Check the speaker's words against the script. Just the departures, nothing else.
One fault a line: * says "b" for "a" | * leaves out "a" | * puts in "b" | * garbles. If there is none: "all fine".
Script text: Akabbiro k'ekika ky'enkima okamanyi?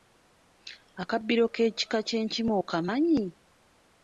all fine